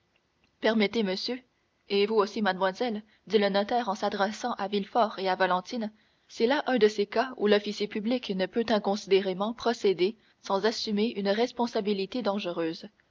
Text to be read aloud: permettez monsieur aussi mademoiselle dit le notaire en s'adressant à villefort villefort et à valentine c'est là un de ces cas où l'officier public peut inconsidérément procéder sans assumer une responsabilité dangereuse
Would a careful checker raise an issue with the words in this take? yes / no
yes